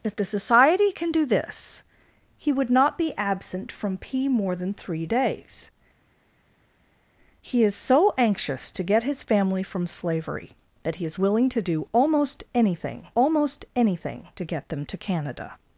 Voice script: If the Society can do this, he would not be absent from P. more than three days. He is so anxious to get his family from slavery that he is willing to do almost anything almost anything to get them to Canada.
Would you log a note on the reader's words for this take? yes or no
no